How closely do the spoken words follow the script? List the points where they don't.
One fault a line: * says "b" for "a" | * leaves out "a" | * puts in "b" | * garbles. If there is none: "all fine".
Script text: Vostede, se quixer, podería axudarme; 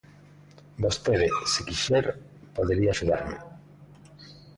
all fine